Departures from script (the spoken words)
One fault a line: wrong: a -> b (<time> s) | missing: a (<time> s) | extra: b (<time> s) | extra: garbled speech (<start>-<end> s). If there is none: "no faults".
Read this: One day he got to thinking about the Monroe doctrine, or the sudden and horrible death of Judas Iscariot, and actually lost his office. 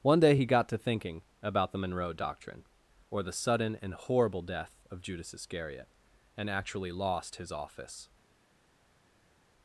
no faults